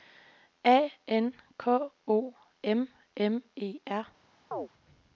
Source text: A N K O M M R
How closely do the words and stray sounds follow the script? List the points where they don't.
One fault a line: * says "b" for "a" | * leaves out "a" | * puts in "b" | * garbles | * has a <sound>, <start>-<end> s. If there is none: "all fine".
* puts in "E"
* has a chirp, 4.5-4.7 s